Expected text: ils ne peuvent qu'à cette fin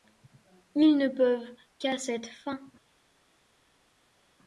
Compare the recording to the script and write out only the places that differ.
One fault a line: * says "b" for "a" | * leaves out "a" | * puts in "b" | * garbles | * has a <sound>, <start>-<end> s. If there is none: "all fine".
all fine